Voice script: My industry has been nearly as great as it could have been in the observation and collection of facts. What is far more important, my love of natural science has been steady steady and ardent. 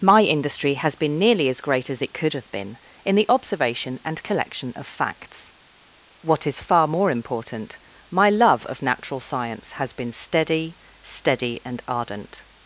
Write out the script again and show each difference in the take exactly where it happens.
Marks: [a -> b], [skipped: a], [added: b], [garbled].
My industry has been nearly as great as it could have been in the observation and collection of facts. What is far more important, my love of natural science has been steady steady and ardent.